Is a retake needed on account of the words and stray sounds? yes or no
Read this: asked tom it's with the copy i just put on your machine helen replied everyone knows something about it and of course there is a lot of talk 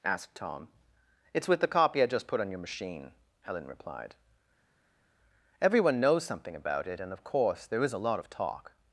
no